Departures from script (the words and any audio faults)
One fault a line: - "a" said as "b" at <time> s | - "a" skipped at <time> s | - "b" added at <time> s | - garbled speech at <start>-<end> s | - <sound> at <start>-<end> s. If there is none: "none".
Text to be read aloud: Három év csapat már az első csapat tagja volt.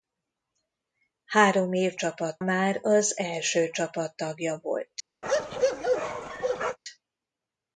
- bark at 5.2-6.8 s